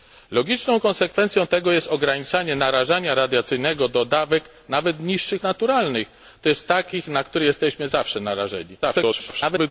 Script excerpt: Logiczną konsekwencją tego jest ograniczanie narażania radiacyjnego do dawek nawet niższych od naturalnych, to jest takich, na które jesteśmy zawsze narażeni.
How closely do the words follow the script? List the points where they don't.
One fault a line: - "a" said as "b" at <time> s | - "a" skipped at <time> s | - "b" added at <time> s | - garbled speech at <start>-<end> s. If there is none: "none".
- "od" skipped at 5.4 s
- garbled speech at 8.8-9.7 s